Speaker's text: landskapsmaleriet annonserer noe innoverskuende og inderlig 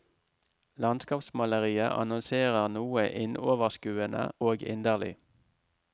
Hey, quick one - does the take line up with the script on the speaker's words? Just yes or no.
yes